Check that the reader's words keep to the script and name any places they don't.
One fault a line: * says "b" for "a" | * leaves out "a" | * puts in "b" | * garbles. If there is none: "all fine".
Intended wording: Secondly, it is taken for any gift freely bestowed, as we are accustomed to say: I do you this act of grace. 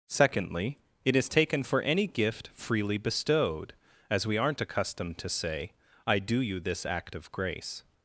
* says "aren't" for "are"